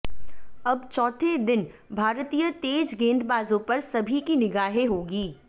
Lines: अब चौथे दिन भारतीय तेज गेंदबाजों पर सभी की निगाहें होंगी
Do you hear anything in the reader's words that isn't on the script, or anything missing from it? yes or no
no